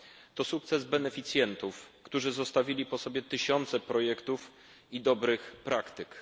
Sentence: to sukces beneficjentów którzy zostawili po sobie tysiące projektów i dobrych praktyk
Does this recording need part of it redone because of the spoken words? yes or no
no